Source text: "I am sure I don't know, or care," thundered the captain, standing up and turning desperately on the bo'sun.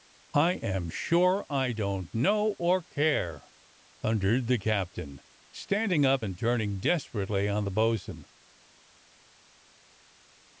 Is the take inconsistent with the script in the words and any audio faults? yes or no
no